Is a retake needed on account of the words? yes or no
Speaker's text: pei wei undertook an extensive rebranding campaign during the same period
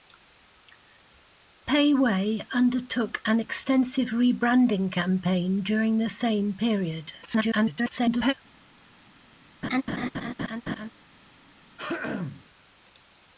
yes